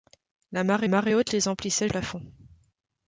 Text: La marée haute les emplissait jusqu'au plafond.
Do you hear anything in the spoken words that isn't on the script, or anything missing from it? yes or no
yes